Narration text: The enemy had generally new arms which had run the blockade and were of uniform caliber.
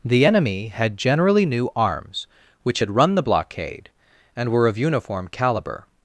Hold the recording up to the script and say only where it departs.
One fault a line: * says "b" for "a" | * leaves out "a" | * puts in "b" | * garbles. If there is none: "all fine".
all fine